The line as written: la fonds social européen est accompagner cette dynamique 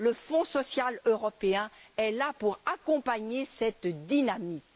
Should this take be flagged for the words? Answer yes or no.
yes